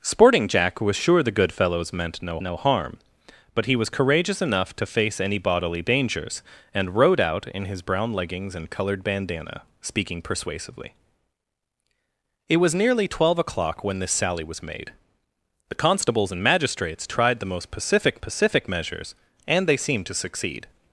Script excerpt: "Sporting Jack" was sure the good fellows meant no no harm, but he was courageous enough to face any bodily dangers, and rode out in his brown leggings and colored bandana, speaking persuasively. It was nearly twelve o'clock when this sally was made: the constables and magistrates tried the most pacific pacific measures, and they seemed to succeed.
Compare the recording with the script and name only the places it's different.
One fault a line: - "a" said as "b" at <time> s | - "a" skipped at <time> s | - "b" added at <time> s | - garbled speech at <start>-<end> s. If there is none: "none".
none